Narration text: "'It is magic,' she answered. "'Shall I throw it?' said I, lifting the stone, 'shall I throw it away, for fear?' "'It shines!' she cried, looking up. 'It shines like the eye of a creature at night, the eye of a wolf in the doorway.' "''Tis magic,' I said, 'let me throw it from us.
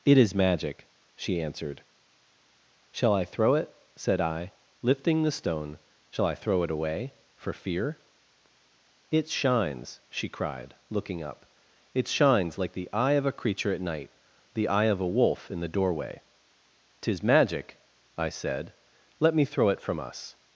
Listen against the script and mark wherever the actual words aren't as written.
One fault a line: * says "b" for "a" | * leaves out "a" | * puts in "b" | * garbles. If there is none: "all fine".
all fine